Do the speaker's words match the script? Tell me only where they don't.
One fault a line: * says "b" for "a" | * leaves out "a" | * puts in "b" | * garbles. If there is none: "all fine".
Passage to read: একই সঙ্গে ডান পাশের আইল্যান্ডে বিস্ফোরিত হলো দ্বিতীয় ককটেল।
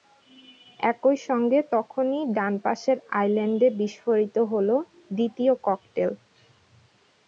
* puts in "তখনই"